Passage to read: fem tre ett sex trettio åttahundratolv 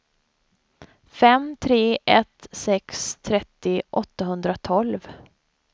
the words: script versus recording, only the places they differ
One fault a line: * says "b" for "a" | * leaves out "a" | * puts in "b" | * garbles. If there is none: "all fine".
all fine